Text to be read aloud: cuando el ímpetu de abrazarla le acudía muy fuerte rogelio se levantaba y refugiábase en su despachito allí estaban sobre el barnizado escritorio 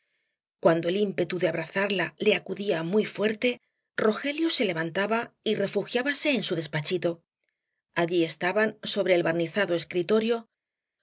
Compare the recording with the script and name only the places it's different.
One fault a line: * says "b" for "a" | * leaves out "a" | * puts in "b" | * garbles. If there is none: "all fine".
all fine